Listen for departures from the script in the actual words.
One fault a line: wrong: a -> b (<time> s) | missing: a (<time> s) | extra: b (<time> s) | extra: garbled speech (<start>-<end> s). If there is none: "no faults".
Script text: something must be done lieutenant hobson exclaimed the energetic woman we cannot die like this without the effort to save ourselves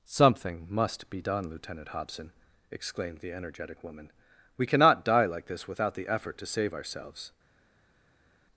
no faults